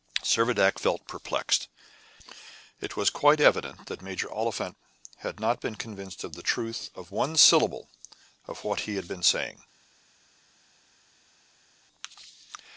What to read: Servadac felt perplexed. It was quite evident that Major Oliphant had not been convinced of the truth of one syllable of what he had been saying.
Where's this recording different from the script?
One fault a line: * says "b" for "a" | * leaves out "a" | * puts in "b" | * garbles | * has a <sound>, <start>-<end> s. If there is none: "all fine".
all fine